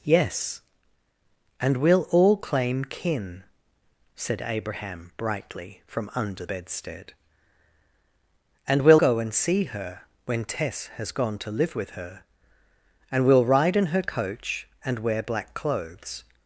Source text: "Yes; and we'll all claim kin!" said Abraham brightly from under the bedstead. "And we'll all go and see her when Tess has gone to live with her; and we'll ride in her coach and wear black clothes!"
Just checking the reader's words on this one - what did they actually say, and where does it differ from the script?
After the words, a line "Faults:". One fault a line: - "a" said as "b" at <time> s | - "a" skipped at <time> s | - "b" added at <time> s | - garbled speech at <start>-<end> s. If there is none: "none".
"Yes; and we'll all claim kin!" said Abraham brightly from under bedstead. "And we'll go and see her when Tess has gone to live with her; and we'll ride in her coach and wear black clothes!"
Faults:
- "the" skipped at 6.5 s
- "all" skipped at 9.0 s